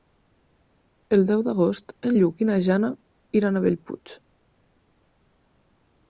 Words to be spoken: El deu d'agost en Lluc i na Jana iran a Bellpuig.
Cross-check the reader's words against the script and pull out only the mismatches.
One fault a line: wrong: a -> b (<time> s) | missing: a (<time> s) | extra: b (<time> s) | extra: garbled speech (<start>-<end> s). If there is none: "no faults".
no faults